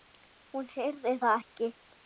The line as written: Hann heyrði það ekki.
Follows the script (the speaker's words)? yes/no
no